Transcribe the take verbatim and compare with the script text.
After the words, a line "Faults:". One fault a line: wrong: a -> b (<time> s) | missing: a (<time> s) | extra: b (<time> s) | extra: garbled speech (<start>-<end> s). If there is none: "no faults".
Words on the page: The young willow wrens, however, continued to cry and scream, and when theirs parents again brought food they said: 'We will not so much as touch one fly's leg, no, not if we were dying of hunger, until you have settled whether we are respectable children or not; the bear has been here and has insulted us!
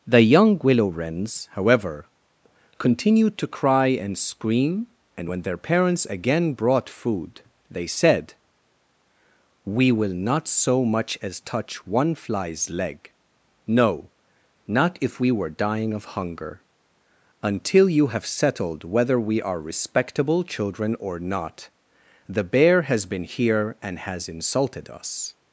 The young willow wrens, however, continued to cry and scream, and when their parents again brought food they said: 'We will not so much as touch one fly's leg, no, not if we were dying of hunger, until you have settled whether we are respectable children or not; the bear has been here and has insulted us!
Faults:
wrong: theirs -> their (5.4 s)